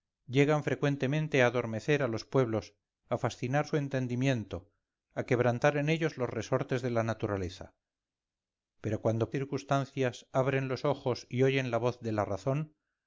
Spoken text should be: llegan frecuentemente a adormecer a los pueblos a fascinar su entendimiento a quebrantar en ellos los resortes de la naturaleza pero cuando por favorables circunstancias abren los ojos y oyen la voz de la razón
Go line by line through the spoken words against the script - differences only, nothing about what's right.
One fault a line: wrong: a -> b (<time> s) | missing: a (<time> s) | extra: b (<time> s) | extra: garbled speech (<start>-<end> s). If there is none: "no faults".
missing: por favorables (9.3 s)